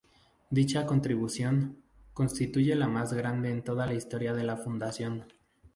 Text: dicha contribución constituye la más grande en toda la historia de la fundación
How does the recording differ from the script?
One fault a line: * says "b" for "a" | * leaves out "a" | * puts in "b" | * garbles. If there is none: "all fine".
all fine